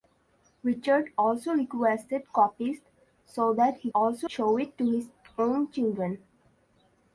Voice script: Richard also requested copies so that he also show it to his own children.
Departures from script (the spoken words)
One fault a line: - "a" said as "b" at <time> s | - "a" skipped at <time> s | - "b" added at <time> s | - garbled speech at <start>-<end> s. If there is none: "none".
none